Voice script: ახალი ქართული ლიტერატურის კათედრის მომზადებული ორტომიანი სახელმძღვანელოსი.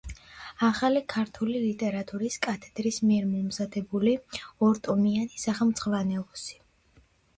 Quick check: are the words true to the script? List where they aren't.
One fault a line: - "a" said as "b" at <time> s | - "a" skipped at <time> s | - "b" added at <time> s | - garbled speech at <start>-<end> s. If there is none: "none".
- "მიერ" added at 3.1 s